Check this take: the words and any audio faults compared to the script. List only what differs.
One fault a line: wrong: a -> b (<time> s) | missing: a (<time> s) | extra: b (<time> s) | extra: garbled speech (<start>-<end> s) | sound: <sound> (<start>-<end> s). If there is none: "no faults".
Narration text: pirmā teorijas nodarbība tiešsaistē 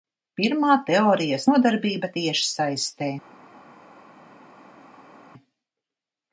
no faults